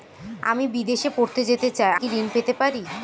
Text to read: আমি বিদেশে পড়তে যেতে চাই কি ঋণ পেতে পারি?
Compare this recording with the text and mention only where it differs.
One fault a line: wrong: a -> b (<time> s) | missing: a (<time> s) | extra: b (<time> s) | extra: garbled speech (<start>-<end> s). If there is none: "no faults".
no faults